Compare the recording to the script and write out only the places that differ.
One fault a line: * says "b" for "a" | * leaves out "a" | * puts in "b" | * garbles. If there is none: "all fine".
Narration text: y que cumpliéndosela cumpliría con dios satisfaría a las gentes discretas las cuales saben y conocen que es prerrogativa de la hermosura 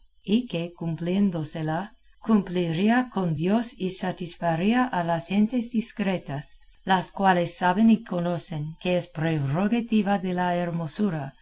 * puts in "y"